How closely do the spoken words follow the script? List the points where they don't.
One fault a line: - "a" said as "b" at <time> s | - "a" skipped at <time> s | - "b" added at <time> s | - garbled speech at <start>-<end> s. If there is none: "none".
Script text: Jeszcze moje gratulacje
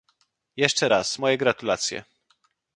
- "raz" added at 0.9 s